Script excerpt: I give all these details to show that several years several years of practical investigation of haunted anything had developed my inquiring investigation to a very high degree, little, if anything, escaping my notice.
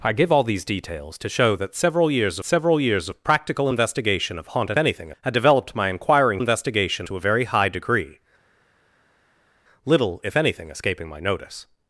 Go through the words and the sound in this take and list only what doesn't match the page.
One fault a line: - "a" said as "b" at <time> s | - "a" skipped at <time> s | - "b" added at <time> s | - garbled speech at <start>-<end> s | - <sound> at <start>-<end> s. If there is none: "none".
none